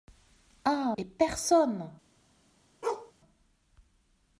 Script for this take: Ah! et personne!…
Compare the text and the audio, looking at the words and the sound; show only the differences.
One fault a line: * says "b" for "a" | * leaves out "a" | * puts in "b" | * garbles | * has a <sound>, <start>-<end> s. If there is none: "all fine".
* has a bark, 2.8-3.1 s